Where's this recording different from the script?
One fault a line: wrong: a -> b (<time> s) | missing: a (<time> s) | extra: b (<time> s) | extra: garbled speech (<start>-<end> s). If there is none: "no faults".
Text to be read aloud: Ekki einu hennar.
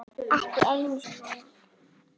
no faults